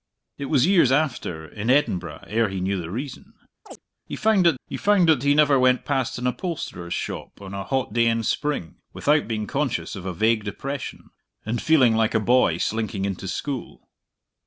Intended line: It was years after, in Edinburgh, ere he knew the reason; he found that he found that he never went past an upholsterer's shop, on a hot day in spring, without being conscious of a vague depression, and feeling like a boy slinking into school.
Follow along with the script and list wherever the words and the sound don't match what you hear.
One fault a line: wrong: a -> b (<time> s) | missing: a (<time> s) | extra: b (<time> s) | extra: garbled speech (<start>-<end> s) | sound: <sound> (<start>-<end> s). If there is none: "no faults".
sound: chirp (3.6-3.8 s)